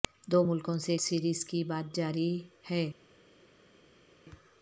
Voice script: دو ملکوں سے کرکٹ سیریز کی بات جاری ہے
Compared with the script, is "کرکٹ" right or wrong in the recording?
wrong